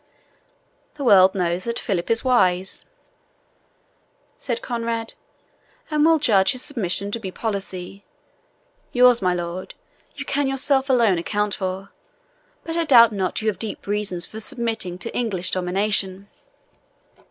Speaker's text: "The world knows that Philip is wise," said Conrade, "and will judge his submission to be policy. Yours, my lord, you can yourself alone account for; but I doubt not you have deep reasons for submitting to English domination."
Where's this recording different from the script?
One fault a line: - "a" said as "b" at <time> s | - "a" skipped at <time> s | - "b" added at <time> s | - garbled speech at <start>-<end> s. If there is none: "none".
none